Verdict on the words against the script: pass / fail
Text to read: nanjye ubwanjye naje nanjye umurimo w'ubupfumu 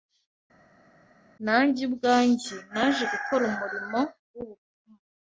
fail